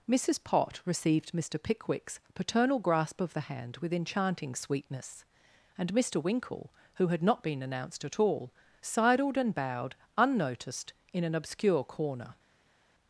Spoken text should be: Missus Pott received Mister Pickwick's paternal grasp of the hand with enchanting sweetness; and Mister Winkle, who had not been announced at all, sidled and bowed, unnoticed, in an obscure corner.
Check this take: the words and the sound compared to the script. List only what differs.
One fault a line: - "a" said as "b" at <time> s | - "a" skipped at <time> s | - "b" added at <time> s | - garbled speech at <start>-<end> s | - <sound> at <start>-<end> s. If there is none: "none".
none